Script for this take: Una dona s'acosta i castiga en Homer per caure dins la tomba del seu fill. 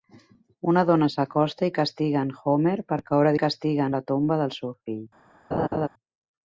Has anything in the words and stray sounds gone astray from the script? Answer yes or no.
yes